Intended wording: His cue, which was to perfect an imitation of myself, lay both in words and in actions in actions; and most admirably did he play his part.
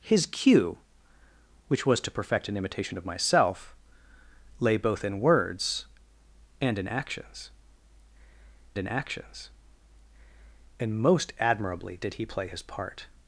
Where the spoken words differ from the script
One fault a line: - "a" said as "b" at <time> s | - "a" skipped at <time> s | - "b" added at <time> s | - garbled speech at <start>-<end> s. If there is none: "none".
none